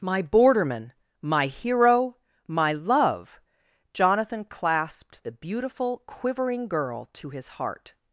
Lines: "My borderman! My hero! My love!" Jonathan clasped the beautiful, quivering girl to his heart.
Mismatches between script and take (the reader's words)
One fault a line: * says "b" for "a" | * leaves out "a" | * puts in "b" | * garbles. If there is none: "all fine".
all fine